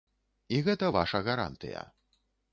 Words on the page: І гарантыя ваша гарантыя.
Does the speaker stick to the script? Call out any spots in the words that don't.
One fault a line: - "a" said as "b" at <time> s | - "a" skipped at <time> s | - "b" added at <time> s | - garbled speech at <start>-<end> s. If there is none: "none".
- "гарантыя" said as "гэта" at 0.7 s